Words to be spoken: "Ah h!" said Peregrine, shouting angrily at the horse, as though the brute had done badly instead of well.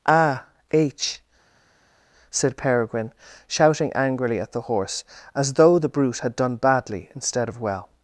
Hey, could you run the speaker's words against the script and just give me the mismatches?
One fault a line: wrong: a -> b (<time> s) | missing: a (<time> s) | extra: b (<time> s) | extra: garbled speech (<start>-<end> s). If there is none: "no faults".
no faults